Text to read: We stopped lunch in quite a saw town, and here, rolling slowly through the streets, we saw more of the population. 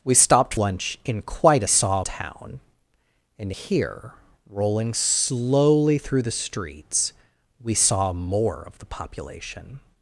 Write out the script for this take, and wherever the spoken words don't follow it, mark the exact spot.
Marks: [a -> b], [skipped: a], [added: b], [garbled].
We stopped lunch in quite a saw town, and here, rolling slowly through the streets, we saw more of the population.